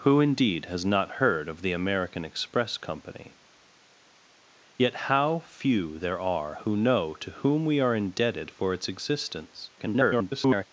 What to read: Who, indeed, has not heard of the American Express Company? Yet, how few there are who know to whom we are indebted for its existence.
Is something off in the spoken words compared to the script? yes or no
yes